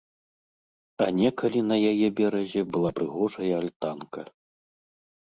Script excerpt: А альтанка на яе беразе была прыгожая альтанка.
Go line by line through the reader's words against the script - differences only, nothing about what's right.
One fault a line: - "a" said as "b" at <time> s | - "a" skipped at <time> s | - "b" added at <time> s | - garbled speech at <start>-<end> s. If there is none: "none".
- "альтанка" said as "некалі" at 1.2 s